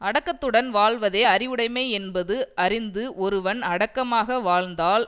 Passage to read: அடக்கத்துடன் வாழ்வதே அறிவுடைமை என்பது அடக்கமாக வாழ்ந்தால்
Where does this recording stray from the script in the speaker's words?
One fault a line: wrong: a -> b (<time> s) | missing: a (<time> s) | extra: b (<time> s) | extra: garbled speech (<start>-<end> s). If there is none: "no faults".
extra: அறிந்து ஒருவன் (2.6 s)